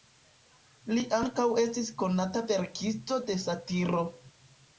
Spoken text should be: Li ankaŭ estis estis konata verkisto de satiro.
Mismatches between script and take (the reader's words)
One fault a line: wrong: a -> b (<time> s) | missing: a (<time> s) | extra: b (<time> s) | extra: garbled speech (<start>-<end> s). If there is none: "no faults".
missing: estis (1.9 s)